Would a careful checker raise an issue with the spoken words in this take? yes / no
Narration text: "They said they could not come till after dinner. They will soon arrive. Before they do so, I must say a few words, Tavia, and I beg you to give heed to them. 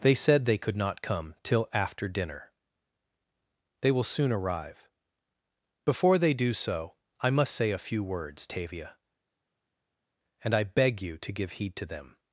no